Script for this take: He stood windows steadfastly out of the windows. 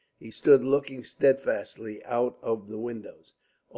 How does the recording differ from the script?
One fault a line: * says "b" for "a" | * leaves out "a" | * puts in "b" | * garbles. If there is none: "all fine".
* says "looking" for "windows"